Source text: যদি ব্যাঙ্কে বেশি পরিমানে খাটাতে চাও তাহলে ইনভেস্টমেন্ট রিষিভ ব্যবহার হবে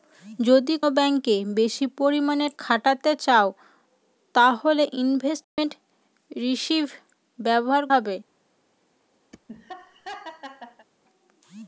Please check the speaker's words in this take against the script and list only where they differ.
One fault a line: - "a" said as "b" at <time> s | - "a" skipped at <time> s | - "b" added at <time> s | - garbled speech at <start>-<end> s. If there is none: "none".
none